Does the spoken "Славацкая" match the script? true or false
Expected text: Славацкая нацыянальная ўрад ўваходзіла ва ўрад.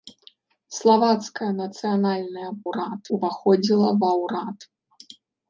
true